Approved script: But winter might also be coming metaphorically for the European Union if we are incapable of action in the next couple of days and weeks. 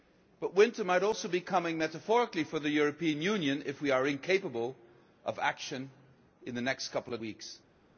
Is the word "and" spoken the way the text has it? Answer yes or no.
no